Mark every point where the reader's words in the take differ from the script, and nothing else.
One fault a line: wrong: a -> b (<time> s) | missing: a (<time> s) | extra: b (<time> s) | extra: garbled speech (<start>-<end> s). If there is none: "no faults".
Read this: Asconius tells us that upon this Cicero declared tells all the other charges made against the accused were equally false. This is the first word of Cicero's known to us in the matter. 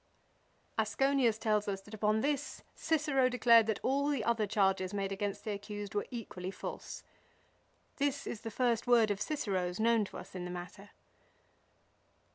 wrong: tells -> that (3.7 s)